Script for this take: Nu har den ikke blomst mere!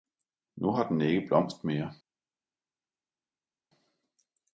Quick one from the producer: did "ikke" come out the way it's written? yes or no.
yes